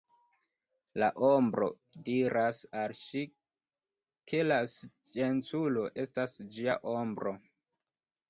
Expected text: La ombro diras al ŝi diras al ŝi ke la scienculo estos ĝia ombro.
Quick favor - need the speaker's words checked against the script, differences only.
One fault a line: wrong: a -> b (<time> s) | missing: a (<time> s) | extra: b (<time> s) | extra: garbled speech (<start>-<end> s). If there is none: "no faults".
missing: diras al ŝi (3.2 s)
wrong: estos -> estas (6.1 s)